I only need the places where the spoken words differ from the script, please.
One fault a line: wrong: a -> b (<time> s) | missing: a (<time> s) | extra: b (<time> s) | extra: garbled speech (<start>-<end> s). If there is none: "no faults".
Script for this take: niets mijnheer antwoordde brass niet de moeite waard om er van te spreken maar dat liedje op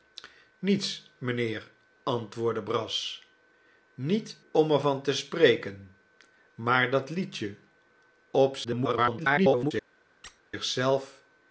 missing: de moeite waard (4.4 s)
extra: garbled speech (8.6-9.7 s)